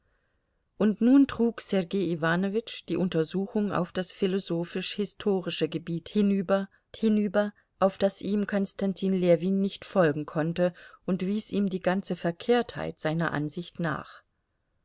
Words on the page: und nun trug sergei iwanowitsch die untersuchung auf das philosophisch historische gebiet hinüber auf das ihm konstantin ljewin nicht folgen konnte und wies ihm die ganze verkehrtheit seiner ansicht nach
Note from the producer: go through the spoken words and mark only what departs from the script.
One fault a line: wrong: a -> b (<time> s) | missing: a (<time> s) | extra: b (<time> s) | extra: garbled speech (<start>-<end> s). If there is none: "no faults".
extra: hinüber (6.9 s)